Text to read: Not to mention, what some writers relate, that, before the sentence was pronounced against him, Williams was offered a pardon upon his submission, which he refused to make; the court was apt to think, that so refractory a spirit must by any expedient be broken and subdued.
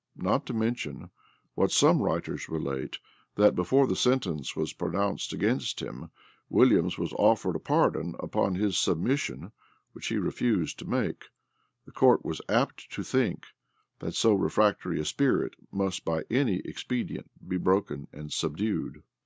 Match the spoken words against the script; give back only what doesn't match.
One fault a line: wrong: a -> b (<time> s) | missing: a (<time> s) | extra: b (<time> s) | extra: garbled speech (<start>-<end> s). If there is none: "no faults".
no faults